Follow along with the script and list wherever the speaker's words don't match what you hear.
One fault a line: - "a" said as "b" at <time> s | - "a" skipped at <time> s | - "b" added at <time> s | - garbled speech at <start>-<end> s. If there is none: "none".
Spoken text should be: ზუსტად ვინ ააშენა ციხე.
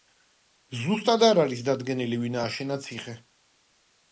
- "არ არის დადგენილი" added at 1.3 s